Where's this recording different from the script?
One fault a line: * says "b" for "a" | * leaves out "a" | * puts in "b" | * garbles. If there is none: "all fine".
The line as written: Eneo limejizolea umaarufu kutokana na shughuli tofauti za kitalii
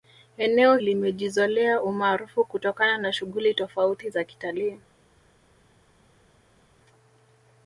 all fine